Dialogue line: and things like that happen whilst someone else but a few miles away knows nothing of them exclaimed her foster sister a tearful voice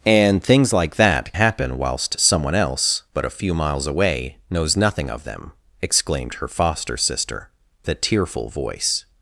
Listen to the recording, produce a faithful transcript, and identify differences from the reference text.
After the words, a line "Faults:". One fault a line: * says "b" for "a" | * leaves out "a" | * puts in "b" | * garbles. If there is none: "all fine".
and things like that happen whilst someone else but a few miles away knows nothing of them exclaimed her foster sister a tearful voice
Faults:
all fine